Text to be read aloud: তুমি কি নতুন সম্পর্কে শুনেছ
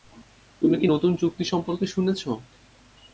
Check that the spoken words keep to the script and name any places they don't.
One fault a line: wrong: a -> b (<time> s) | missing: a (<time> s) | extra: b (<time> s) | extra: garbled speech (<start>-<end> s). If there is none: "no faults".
extra: চুক্তি (1.2 s)